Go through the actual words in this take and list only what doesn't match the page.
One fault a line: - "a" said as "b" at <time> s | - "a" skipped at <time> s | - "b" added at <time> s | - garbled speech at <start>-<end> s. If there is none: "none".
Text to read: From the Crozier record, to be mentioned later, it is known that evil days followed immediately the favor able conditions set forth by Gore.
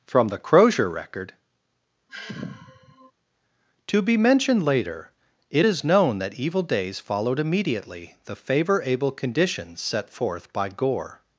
none